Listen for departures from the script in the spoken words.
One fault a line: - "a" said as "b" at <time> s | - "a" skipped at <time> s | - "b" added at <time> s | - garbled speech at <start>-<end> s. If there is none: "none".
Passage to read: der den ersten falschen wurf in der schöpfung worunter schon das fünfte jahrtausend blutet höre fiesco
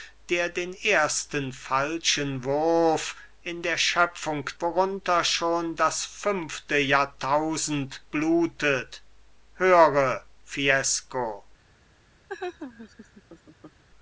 none